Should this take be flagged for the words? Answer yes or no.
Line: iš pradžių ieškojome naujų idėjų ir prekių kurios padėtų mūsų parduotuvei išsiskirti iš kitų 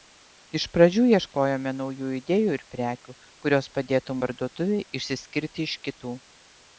yes